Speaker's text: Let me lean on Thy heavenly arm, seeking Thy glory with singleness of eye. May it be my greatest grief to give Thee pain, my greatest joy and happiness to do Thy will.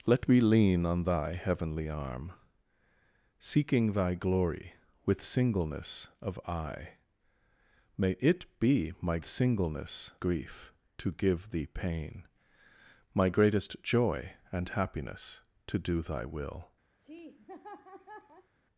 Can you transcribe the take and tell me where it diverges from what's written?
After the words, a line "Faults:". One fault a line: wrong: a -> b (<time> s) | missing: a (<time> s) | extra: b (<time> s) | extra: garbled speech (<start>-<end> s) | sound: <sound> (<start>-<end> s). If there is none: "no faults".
Let me lean on Thy heavenly arm, seeking Thy glory with singleness of eye. May it be my singleness grief to give Thee pain, my greatest joy and happiness to do Thy will.
Faults:
wrong: greatest -> singleness (9.2 s)
sound: laugh (17.0-18.5 s)